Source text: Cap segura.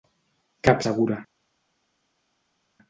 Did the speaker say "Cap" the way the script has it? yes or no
yes